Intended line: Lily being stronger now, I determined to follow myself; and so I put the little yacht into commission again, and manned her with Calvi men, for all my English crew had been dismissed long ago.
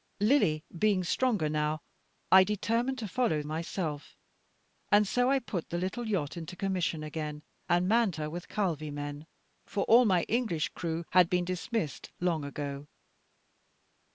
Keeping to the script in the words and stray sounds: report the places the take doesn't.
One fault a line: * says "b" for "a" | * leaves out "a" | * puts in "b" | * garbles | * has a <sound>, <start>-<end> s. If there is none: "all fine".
all fine